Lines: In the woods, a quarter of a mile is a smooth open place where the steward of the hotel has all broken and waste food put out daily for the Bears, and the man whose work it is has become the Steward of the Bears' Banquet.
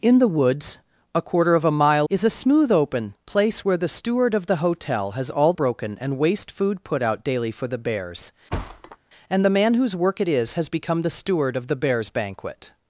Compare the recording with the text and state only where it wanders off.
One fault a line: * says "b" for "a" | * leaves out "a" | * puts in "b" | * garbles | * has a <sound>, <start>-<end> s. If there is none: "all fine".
* has a thud, 8.5-9.0 s